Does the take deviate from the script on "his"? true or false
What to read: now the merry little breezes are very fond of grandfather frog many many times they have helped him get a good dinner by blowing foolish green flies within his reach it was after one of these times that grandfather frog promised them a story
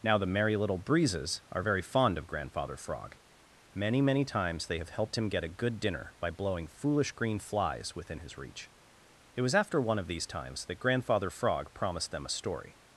false